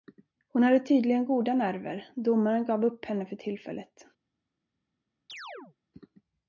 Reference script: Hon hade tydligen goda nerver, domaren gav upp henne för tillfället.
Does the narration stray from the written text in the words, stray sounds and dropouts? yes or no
yes